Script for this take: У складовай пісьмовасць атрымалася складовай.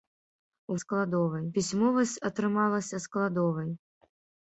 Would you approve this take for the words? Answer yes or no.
yes